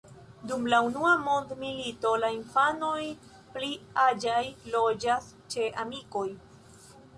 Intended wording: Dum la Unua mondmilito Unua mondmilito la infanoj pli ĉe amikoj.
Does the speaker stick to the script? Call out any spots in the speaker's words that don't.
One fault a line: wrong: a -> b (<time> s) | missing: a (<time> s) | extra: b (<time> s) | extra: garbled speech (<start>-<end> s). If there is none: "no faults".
missing: Unua mondmilito (2.1 s)
extra: aĝaj loĝas (4.1 s)